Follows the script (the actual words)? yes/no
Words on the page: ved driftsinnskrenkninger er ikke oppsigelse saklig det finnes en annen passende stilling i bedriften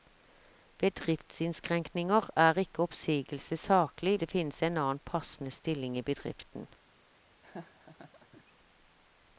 yes